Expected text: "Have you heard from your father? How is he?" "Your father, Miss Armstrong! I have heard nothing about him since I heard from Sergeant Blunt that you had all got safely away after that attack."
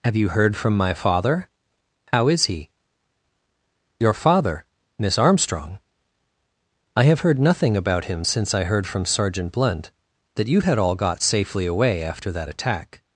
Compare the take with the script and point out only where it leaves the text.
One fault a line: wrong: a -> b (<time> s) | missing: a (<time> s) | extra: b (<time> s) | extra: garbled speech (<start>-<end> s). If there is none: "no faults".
wrong: your -> my (0.8 s)